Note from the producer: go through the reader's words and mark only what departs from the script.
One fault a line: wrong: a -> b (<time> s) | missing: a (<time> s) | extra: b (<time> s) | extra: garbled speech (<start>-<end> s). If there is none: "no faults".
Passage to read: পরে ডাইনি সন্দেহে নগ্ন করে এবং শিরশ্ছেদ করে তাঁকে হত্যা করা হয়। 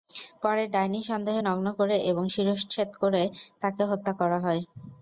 no faults